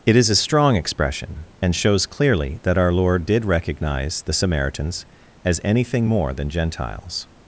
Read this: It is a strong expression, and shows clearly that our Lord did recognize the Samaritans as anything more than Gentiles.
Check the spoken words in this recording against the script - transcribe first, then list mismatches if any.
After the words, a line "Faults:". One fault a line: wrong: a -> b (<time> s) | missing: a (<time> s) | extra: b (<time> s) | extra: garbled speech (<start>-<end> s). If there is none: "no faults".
It is a strong expression, and shows clearly that our Lord did recognize the Samaritans as anything more than Gentiles.
Faults:
no faults